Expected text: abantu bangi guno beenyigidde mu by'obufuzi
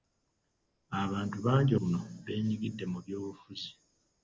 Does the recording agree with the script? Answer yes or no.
yes